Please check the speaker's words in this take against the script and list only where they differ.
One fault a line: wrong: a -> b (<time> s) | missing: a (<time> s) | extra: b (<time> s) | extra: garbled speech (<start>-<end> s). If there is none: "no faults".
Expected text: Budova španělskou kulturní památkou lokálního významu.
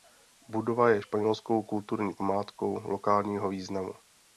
extra: je (0.9 s)